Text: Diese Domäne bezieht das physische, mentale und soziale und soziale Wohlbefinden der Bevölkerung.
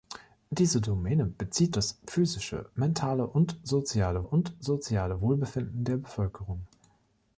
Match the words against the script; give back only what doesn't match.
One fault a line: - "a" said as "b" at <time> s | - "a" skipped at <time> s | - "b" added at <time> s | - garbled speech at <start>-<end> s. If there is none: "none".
none